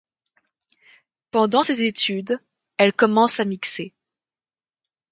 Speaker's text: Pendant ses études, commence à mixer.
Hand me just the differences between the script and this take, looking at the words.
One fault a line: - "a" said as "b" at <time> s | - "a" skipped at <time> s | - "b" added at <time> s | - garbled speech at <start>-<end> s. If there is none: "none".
- "elle" added at 2.8 s